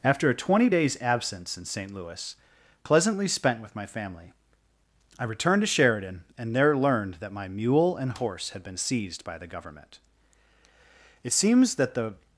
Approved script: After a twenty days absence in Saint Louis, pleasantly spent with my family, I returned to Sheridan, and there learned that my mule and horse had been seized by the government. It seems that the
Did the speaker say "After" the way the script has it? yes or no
yes